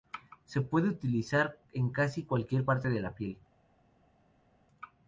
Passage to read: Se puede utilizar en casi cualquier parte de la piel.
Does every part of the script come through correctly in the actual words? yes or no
yes